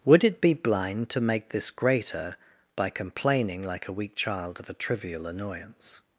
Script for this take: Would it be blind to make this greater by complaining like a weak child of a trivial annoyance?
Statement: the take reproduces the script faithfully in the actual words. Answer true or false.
true